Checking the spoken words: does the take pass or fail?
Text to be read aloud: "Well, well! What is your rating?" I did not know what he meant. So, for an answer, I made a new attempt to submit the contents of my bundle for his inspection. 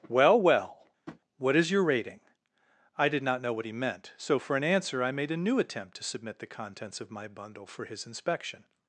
pass